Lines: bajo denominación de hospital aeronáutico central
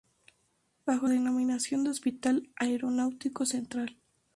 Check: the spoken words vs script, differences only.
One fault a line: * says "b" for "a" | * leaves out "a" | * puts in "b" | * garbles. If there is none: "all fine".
all fine